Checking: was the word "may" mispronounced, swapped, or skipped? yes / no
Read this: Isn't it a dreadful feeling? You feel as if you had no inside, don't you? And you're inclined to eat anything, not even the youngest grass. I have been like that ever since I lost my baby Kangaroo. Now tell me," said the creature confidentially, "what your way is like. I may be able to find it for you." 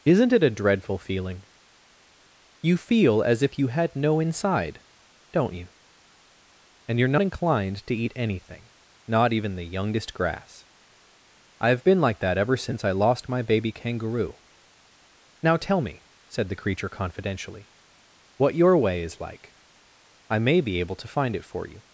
no